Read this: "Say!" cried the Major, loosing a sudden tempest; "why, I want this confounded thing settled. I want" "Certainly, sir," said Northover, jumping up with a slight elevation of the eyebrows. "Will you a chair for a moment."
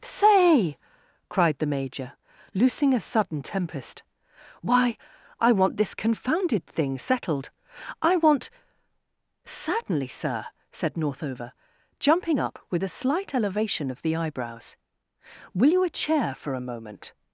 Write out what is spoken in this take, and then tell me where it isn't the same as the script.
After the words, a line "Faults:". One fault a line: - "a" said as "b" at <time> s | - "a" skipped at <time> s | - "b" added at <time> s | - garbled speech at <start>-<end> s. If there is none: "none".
"Say!" cried the Major, loosing a sudden tempest; "why, I want this confounded thing settled. I want" "Certainly, sir," said Northover, jumping up with a slight elevation of the eyebrows. "Will you a chair for a moment."
Faults:
none